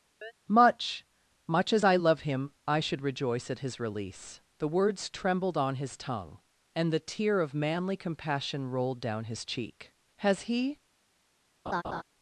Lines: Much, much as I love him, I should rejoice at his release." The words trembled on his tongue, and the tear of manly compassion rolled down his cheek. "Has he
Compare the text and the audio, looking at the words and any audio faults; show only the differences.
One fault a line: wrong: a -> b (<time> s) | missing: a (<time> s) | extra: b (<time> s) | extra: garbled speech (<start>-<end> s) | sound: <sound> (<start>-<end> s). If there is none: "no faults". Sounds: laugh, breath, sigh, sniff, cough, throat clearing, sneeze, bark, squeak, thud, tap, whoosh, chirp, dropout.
sound: chirp (0.2-0.3 s)
sound: laugh (11.7-12.0 s)